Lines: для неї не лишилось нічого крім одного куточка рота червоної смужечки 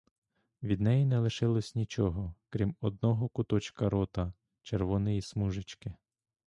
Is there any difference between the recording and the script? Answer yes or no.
yes